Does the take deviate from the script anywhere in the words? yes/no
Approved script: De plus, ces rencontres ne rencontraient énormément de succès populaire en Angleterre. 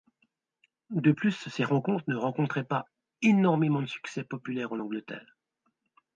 yes